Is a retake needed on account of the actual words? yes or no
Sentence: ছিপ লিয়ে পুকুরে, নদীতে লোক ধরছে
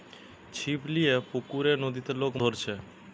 no